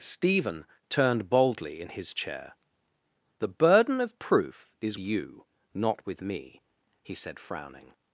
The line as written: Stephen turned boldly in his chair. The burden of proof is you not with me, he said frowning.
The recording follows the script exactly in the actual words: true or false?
true